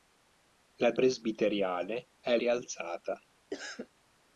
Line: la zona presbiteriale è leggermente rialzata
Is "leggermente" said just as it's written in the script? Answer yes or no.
no